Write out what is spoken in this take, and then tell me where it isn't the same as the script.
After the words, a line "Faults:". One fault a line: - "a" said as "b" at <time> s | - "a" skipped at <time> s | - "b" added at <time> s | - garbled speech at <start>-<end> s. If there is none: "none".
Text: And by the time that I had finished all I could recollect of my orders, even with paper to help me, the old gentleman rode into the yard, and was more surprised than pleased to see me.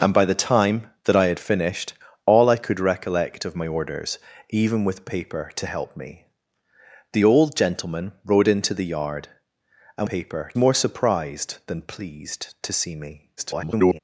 And by the time that I had finished all I could recollect of my orders, even with paper to help me, the old gentleman rode into the yard, and paper more surprised than pleased to see me. [garbled]
Faults:
- "was" said as "paper" at 10.0 s
- garbled speech at 13.4-14.0 s